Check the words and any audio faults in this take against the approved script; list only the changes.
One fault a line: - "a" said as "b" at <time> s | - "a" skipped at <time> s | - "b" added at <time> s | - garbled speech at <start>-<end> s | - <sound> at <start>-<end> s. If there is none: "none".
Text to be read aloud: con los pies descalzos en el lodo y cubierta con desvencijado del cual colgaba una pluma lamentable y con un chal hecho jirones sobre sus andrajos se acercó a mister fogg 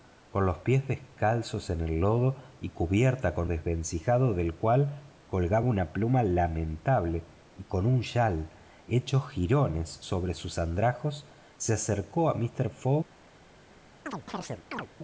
- chirp at 14.1-14.9 s